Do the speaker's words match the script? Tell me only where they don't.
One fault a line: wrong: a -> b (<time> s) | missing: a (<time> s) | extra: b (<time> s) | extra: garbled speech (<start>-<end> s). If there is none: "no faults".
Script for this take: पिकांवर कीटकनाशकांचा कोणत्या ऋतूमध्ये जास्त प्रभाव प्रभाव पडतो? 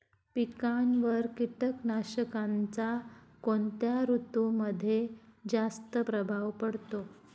missing: प्रभाव (6.5 s)